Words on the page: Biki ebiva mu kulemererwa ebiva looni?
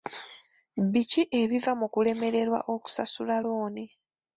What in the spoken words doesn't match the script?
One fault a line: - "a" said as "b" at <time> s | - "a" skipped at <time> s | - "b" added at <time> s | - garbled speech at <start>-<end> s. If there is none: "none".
- "ebiva" said as "okusasula" at 2.7 s